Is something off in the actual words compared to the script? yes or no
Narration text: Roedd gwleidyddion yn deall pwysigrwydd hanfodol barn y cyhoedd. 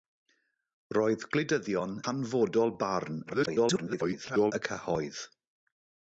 yes